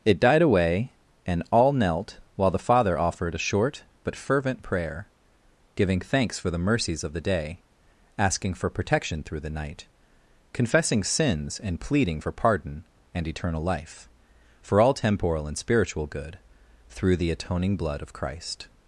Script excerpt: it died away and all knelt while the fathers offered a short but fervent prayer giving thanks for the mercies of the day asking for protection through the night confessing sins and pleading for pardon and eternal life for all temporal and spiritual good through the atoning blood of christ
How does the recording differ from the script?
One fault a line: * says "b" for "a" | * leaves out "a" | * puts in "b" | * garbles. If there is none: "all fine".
* says "father" for "fathers"